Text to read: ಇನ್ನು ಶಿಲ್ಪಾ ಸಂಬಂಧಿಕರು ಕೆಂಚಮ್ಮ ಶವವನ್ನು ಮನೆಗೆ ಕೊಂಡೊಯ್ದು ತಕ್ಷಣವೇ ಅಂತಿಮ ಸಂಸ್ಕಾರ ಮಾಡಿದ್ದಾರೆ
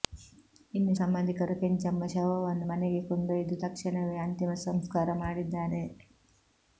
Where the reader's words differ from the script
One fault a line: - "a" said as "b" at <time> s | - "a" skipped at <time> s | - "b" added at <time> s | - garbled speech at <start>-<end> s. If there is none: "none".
- "ಶಿಲ್ಪಾ" skipped at 0.9 s